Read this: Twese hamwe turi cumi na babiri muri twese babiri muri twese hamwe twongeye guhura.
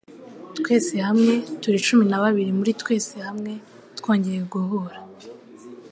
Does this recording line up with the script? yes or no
no